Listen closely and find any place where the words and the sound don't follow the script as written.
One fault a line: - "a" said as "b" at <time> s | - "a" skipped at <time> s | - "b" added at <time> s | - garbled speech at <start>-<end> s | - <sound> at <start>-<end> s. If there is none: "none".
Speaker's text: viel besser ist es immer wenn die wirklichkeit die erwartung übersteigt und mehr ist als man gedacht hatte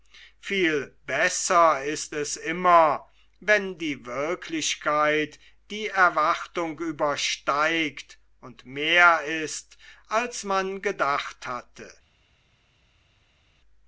none